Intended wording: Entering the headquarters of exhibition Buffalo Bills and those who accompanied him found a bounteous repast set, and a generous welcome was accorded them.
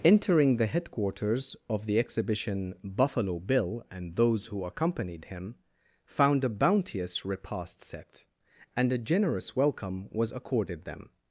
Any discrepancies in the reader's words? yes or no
yes